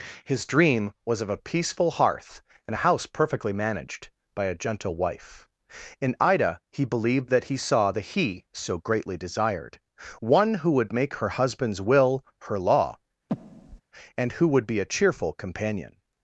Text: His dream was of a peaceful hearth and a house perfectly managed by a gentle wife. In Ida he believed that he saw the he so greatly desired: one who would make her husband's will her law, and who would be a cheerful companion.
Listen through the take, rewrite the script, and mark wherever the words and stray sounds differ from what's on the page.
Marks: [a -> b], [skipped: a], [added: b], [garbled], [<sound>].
His dream was of a peaceful hearth and a house perfectly managed by a gentle wife. In Ida he believed that he saw the he so greatly desired: one who would make her husband's will her law, [breath] and who would be a cheerful companion.